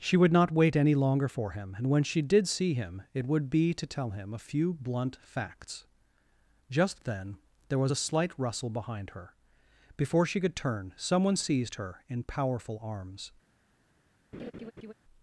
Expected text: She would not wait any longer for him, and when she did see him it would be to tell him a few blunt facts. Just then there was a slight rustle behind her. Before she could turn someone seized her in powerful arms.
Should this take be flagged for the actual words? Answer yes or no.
no